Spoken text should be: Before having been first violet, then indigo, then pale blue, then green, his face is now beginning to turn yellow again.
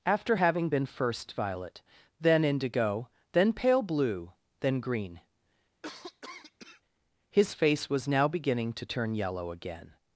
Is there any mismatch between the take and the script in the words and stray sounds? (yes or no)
yes